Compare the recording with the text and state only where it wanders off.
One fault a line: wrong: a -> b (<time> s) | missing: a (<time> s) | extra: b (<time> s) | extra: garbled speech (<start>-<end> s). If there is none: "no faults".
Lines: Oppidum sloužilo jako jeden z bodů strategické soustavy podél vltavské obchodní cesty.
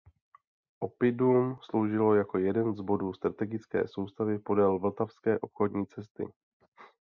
no faults